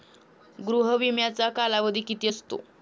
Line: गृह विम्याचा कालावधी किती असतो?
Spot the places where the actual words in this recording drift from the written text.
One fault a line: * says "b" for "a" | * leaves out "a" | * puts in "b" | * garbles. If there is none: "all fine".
all fine